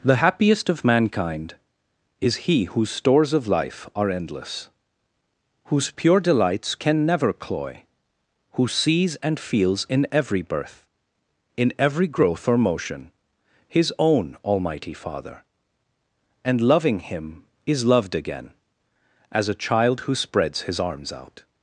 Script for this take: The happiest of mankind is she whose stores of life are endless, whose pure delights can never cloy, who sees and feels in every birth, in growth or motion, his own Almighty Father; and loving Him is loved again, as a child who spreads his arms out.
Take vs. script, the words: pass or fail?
fail